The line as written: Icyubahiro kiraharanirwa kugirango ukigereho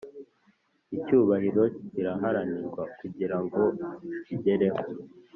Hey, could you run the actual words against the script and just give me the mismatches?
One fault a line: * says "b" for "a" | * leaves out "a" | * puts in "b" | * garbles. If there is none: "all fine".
all fine